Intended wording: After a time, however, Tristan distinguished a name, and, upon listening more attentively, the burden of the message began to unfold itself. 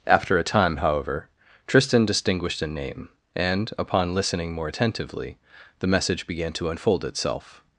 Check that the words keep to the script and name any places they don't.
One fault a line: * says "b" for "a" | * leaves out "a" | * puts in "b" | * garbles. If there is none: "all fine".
* leaves out "burden of the"